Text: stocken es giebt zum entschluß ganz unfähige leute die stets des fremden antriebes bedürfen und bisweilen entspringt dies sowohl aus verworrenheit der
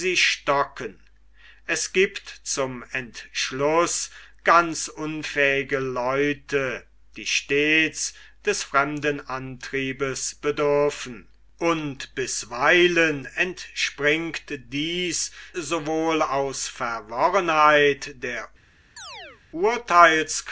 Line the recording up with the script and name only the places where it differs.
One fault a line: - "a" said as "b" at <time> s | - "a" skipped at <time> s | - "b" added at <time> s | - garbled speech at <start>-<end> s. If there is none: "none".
none